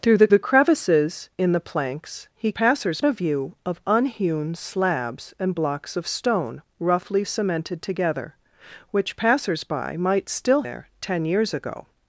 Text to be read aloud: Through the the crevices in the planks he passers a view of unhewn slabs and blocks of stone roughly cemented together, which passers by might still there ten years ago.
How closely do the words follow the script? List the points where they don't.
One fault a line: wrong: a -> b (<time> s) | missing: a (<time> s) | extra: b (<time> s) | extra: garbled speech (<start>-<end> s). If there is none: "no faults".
no faults